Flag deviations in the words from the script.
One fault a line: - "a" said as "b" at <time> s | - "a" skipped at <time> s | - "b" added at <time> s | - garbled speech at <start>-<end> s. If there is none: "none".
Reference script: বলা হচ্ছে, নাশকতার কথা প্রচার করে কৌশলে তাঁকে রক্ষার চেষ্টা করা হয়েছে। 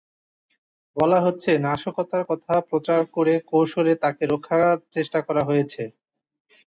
none